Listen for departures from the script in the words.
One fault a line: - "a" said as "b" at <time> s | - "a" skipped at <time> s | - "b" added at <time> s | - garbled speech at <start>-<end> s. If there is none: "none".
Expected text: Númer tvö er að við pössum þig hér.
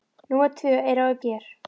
- "pössum þig" skipped at 1.2 s